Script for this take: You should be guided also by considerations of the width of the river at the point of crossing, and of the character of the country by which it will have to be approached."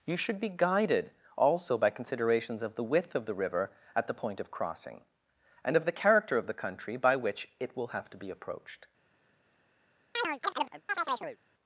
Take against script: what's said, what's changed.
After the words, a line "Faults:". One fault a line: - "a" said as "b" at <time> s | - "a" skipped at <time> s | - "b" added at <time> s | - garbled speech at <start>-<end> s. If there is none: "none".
You should be guided also by considerations of the width of the river at the point of crossing, and of the character of the country by which it will have to be approached."
Faults:
none